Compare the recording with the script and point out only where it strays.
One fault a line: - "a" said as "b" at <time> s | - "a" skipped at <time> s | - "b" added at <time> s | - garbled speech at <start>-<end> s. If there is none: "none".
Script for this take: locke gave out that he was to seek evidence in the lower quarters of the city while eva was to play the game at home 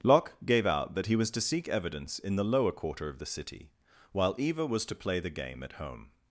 - "quarters" said as "quarter" at 2.7 s